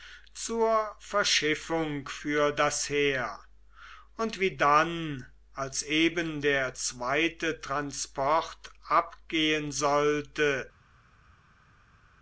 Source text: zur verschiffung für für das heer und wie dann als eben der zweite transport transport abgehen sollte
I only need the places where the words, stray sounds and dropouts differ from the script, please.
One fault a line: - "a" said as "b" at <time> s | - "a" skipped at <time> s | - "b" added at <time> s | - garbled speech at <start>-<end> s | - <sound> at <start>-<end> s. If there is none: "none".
- "für" skipped at 2.5 s
- "transport" skipped at 8.7 s